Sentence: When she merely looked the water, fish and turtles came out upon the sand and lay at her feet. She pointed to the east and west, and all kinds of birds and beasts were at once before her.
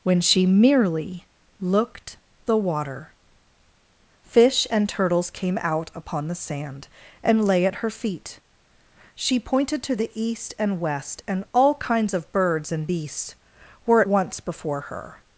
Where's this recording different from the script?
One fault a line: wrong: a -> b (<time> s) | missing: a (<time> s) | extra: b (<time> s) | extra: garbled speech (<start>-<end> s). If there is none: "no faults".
no faults